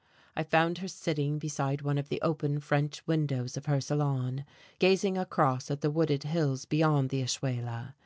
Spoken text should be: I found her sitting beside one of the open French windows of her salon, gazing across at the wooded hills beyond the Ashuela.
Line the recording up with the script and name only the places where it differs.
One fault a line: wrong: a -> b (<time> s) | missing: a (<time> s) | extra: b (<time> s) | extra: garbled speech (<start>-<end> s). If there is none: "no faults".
no faults